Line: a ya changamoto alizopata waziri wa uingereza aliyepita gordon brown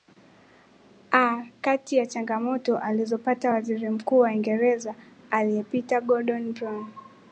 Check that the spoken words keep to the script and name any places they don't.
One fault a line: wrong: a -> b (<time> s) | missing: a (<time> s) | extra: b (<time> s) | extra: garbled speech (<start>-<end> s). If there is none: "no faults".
extra: kati (1.6 s)
extra: mkuu (3.9 s)